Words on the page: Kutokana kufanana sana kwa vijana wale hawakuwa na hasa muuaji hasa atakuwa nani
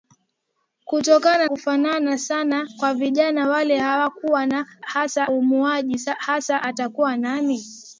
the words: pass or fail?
pass